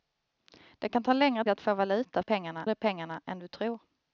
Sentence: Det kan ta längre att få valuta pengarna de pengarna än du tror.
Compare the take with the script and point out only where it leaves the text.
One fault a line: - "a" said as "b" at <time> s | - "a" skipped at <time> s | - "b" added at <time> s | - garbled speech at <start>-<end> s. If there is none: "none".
none